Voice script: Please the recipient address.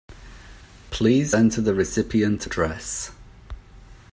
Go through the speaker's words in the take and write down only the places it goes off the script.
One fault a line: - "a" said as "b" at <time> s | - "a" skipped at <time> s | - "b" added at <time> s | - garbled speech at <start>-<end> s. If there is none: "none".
- "enter" added at 1.3 s